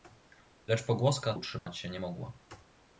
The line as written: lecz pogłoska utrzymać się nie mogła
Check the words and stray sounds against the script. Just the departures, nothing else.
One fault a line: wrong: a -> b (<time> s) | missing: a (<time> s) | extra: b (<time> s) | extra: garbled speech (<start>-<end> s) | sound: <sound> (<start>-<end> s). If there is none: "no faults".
sound: dropout (1.6-1.7 s)